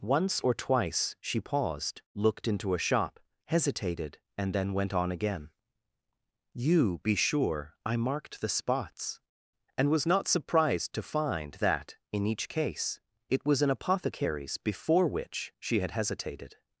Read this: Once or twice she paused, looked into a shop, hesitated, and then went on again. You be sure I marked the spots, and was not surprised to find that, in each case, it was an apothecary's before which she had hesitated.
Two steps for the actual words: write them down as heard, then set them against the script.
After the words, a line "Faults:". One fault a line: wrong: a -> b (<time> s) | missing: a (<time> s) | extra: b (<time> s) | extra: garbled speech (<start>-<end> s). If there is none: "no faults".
Once or twice she paused, looked into a shop, hesitated, and then went on again. You be sure I marked the spots, and was not surprised to find that, in each case, it was an apothecary's before which she had hesitated.
Faults:
no faults